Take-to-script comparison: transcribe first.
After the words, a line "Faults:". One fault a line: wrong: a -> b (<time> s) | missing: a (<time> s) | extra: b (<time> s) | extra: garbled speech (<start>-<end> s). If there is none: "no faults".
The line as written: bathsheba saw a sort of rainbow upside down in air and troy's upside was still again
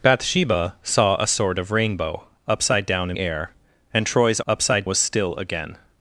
bathsheba saw a sort of rainbow upside down in air and troy's upside was still again
Faults:
no faults